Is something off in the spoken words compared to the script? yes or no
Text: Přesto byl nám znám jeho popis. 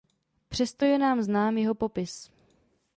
yes